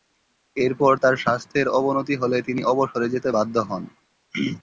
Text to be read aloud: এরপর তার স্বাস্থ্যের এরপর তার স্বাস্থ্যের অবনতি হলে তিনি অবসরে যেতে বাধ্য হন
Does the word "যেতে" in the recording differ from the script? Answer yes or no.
no